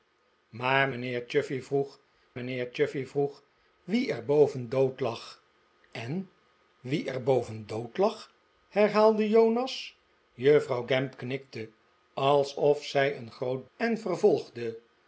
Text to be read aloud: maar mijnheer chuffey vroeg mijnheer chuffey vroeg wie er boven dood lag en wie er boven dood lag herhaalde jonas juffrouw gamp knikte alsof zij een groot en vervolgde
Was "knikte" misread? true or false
false